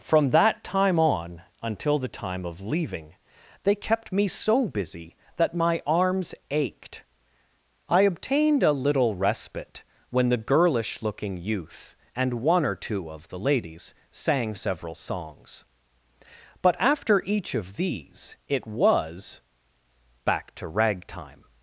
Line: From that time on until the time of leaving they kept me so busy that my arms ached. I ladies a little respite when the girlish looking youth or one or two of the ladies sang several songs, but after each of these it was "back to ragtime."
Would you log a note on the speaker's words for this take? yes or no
yes